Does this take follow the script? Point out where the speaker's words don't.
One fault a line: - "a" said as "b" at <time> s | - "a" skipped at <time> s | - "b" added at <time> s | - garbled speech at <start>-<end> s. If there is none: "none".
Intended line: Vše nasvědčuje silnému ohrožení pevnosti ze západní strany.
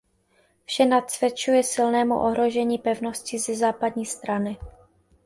none